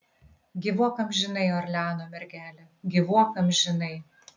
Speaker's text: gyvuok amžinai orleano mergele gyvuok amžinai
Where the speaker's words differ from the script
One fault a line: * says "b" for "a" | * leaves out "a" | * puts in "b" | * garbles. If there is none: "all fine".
all fine